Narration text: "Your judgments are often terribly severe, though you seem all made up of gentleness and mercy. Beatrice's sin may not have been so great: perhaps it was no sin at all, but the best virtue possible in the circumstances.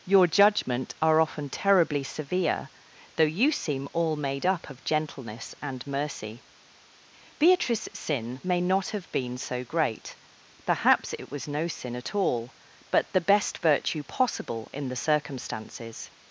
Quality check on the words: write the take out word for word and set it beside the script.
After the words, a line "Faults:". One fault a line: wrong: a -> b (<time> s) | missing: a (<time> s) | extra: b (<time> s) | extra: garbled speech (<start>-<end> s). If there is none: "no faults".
"Your judgment are often terribly severe, though you seem all made up of gentleness and mercy. Beatrice's sin may not have been so great: perhaps it was no sin at all, but the best virtue possible in the circumstances.
Faults:
wrong: judgments -> judgment (0.2 s)